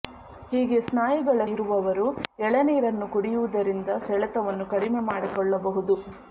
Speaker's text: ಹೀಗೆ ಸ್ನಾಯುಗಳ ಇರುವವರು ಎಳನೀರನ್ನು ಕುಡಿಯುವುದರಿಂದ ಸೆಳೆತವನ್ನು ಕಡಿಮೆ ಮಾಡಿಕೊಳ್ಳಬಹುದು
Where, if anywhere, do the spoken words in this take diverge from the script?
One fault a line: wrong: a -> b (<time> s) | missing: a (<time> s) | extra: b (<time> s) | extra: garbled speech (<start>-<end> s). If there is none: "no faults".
no faults